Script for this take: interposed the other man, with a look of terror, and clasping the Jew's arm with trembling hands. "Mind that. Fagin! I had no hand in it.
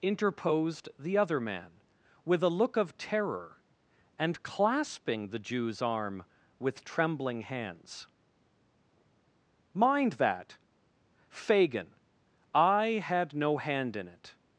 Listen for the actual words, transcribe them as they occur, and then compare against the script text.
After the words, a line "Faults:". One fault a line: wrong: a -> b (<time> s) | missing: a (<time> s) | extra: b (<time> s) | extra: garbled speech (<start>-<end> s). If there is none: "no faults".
interposed the other man, with a look of terror, and clasping the Jew's arm with trembling hands. "Mind that. Fagin! I had no hand in it.
Faults:
no faults